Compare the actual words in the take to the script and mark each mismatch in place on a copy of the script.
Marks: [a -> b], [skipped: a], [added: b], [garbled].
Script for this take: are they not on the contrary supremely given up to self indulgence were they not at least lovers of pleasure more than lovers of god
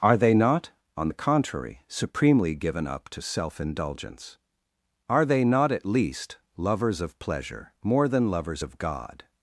are they not on the contrary supremely given up to self indulgence [were -> are] they not at least lovers of pleasure more than lovers of god